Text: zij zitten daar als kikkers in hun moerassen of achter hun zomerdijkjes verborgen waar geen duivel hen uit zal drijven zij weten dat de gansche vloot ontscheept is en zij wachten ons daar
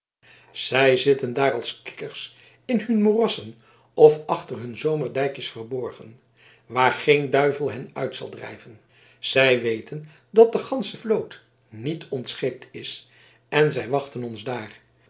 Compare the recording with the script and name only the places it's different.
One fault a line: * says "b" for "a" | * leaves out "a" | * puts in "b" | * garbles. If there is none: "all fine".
* puts in "niet"